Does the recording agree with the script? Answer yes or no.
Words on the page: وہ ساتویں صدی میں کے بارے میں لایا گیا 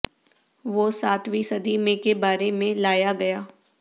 yes